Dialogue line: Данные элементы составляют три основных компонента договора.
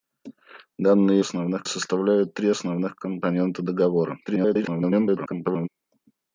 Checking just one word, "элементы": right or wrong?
wrong